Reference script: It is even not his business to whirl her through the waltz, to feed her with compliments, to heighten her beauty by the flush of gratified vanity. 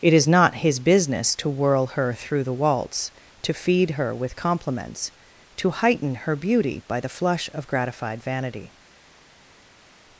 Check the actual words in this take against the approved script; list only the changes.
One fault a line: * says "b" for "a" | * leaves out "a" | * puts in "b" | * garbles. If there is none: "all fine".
* leaves out "even"